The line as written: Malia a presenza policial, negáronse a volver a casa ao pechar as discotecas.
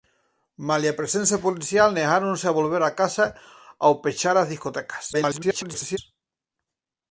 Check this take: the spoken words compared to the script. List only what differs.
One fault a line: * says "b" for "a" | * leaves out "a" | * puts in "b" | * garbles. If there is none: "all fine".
* garbles